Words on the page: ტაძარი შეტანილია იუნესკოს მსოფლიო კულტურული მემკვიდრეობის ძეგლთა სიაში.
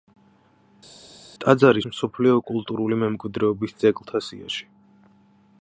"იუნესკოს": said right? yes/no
no